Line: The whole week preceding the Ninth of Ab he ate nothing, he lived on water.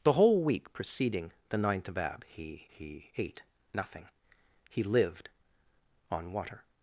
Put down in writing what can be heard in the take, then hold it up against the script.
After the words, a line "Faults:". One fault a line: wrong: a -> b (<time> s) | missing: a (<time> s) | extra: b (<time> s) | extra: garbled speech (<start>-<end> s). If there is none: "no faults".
The whole week preceding the Ninth of Ab he he ate nothing, he lived on water.
Faults:
extra: he (2.7 s)